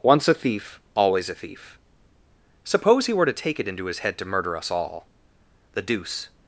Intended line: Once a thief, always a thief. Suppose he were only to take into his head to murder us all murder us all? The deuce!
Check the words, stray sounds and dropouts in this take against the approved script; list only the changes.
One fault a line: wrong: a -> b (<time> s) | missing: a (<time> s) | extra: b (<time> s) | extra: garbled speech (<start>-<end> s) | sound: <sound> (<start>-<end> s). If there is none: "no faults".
missing: only (3.2 s)
extra: it (3.6 s)
missing: murder us all (5.1 s)